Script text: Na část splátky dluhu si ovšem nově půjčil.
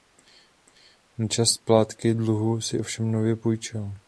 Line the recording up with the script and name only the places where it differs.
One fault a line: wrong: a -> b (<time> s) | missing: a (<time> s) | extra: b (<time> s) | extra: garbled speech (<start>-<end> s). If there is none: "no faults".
no faults